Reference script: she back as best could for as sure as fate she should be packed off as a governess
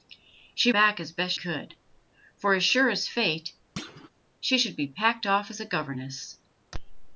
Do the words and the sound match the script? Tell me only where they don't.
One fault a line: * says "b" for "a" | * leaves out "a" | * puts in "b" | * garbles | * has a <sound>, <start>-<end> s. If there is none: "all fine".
* has a thud, 3.8-4.1 s